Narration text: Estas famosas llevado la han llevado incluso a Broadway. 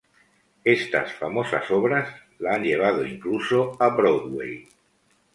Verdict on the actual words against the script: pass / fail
fail